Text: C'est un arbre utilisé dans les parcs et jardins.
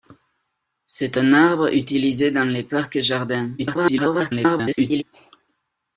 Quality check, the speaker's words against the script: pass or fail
fail